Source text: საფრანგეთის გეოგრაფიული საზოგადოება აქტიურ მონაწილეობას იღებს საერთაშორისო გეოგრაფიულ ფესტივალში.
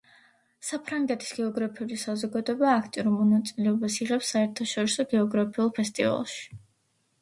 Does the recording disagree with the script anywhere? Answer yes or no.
no